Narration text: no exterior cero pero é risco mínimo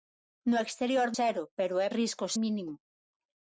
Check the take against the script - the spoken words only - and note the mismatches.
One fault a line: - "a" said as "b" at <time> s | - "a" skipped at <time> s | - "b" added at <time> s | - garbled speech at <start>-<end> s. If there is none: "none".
none